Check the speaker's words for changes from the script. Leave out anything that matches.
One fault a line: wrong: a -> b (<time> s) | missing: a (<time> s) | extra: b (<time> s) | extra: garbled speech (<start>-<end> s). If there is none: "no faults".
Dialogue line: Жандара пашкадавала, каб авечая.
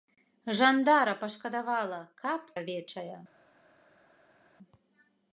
no faults